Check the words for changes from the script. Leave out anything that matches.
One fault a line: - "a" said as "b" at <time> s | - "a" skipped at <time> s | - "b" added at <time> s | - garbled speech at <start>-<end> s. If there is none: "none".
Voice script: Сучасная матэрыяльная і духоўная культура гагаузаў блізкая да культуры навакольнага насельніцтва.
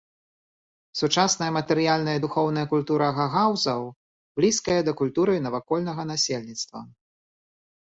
none